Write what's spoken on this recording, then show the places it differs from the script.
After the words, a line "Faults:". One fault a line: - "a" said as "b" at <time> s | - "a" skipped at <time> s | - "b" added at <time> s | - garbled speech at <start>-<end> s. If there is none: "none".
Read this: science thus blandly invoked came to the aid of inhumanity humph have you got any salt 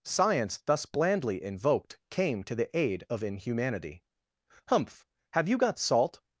science thus blandly invoked came to the aid of inhumanity humph have you got salt
Faults:
- "any" skipped at 5.8 s